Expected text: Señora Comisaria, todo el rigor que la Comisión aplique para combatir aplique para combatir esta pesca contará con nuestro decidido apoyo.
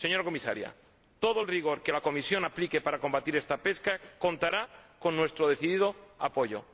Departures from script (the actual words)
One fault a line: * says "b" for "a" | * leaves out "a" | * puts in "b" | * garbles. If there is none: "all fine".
* leaves out "aplique para combatir"